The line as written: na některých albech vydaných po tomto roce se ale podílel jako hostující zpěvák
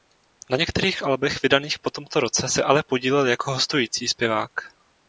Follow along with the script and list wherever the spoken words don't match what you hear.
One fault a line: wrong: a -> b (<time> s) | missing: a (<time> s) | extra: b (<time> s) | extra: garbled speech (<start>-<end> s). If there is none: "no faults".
no faults